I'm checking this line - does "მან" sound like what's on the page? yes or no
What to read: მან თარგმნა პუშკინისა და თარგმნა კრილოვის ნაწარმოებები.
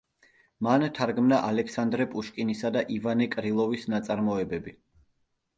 yes